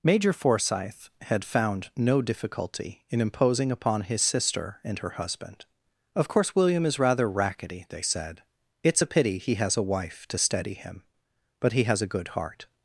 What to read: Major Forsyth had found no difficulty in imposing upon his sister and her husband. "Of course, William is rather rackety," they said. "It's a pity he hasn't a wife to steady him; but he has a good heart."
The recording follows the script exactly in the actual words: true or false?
false